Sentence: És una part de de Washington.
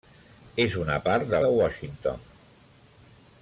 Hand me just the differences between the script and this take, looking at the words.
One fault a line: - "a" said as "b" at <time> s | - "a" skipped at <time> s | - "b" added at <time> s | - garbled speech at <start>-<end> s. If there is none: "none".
none